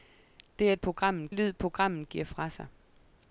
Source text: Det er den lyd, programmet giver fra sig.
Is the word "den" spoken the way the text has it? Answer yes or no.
no